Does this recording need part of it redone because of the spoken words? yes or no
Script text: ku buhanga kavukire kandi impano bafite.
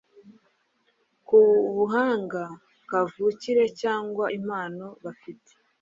yes